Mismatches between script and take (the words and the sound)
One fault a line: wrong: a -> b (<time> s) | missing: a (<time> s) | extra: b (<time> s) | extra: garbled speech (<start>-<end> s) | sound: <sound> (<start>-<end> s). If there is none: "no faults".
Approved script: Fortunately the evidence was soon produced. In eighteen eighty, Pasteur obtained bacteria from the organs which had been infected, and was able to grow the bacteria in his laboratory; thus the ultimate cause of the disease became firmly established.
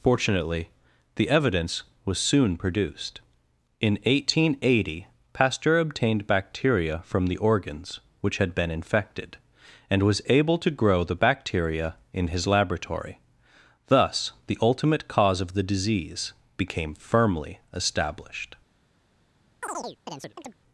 sound: chirp (19.6-20.6 s)